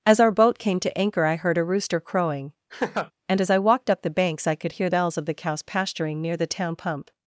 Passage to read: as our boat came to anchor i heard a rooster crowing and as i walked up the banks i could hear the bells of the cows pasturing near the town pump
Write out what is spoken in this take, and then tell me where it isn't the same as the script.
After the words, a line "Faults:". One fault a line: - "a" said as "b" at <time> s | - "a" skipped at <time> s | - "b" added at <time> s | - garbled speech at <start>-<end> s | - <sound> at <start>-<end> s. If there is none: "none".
as our boat came to anchor i heard a rooster crowing and as i walked up the banks i could hear bells of the cows pasturing near the town pump
Faults:
- laugh at 2.7-3.1 s
- "the" skipped at 4.9 s